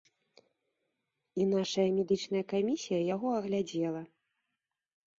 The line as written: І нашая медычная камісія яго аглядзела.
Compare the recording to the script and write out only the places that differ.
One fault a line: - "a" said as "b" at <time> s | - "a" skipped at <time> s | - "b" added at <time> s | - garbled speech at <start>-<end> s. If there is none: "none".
none